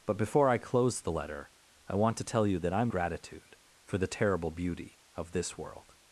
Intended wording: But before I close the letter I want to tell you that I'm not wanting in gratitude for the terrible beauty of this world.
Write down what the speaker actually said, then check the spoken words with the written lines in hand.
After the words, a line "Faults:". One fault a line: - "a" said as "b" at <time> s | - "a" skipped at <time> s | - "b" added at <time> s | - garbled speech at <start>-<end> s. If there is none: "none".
But before I close the letter I want to tell you that I'm gratitude for the terrible beauty of this world.
Faults:
- "not wanting in" skipped at 2.9 s